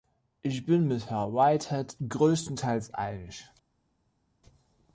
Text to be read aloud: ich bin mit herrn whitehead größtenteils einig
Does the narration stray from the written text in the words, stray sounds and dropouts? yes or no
no